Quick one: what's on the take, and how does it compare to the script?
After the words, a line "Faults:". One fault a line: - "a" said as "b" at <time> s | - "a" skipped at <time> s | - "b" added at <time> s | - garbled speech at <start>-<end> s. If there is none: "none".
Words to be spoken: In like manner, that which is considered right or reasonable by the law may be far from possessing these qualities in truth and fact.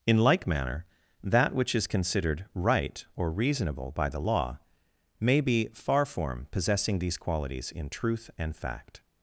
In like manner, that which is considered right or reasonable by the law may be far form possessing these qualities in truth and fact.
Faults:
- "from" said as "form" at 6.0 s